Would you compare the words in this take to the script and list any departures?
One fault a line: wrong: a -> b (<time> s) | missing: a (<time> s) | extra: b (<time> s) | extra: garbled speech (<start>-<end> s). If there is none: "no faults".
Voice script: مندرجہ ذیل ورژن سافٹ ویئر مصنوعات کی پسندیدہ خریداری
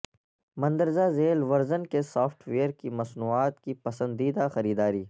extra: کے (1.9 s)
extra: کی (2.7 s)